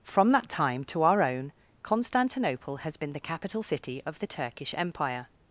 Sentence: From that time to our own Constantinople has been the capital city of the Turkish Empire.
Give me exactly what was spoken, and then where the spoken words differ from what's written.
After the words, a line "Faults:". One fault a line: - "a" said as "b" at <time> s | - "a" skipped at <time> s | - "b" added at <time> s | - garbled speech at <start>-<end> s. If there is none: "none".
From that time to our own Constantinople has been the capital city of the Turkish Empire.
Faults:
none